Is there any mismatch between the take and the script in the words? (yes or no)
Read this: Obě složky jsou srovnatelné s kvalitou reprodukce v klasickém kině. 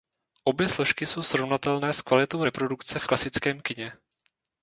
no